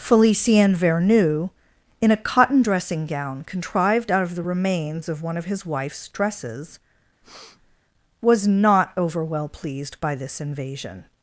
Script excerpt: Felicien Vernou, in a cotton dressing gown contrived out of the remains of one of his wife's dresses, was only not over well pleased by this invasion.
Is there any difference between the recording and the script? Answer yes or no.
yes